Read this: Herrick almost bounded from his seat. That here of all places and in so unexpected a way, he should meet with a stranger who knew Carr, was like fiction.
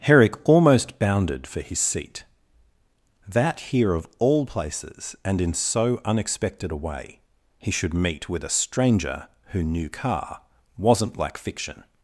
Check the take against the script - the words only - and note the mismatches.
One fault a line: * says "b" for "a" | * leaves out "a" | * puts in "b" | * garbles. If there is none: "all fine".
* says "for" for "from"
* says "wasn't" for "was"